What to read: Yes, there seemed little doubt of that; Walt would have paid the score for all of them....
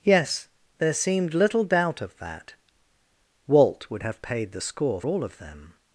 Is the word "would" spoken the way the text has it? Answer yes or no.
yes